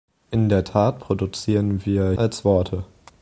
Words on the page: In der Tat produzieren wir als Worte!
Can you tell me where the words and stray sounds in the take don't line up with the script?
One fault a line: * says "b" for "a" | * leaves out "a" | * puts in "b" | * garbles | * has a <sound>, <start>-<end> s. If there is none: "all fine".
all fine